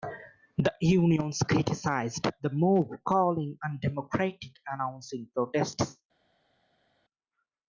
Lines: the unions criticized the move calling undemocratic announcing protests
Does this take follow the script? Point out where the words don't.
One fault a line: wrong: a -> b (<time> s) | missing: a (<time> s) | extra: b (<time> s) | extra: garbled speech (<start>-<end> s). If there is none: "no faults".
no faults